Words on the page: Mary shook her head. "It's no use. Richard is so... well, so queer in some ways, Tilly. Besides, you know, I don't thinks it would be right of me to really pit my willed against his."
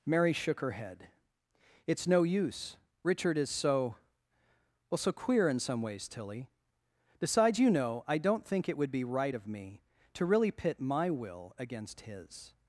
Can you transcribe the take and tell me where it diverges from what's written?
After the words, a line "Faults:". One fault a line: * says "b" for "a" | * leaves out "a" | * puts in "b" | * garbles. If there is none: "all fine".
Mary shook her head. "It's no use. Richard is so... well, so queer in some ways, Tilly. Besides, you know, I don't think it would be right of me to really pit my will against his."
Faults:
* says "think" for "thinks"
* says "will" for "willed"